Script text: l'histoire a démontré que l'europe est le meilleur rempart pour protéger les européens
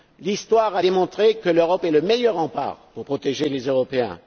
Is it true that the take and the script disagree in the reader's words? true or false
false